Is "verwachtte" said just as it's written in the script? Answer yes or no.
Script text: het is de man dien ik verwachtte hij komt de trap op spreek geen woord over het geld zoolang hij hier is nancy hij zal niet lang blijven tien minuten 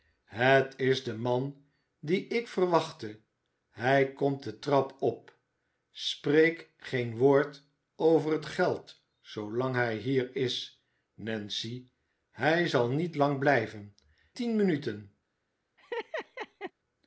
yes